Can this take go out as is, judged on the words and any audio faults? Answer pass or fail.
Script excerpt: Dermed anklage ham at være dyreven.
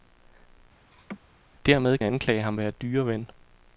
fail